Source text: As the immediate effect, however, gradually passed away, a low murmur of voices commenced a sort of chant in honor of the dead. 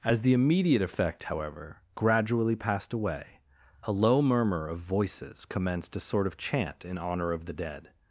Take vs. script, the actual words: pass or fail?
pass